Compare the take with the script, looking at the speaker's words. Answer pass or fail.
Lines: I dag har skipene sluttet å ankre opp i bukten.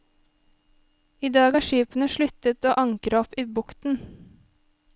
pass